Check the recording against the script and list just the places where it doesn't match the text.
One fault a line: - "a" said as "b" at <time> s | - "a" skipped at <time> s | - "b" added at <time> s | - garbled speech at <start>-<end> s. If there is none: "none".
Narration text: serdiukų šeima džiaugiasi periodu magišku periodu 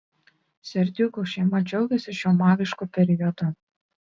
- "periodu" said as "šiuo" at 2.2 s